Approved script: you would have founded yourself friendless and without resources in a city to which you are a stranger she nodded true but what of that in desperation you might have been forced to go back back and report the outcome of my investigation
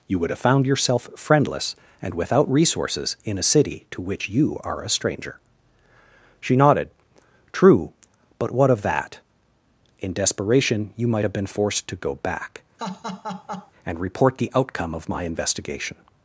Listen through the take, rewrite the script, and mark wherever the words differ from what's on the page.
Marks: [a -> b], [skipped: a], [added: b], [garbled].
you would have [founded -> found] yourself friendless and without resources in a city to which you are a stranger she nodded true but what of that in desperation you might have been forced to go back [skipped: back] and report the outcome of my investigation